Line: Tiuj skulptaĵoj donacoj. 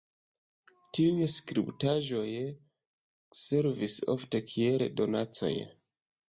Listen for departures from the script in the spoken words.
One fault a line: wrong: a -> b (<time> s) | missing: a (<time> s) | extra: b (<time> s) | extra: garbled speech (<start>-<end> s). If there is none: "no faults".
extra: servis ofte kiel (3.4 s)